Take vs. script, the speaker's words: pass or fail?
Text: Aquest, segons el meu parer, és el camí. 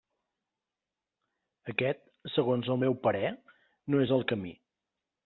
fail